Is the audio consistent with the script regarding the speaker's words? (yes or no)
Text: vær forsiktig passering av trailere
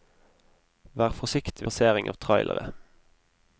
yes